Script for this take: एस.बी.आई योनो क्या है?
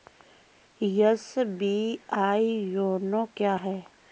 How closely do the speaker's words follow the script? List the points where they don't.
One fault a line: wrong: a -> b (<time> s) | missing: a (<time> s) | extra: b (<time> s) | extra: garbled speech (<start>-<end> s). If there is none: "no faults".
no faults